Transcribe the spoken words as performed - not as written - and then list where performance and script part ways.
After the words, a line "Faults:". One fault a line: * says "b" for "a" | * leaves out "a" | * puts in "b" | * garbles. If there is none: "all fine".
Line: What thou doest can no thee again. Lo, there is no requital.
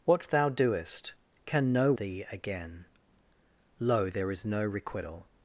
What thou doest can no thee again. Lo, there is no requital.
Faults:
all fine